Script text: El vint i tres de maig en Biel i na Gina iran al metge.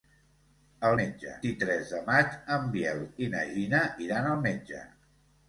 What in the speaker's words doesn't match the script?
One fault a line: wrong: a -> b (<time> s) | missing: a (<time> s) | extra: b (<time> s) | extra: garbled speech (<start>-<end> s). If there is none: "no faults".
wrong: vint -> metge (1.0 s)